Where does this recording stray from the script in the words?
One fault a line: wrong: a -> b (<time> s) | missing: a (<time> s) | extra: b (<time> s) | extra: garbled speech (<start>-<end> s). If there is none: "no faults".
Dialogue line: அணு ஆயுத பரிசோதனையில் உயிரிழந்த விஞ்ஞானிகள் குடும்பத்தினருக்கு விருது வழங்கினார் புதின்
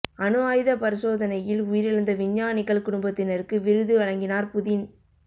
no faults